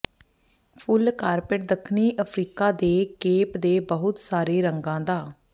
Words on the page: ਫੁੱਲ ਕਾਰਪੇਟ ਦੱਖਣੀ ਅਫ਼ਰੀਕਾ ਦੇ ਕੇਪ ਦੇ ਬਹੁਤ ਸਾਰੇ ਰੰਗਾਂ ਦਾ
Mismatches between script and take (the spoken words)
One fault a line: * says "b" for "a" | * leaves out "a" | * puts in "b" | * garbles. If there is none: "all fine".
all fine